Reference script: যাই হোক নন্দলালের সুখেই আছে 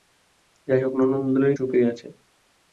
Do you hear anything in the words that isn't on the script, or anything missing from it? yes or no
no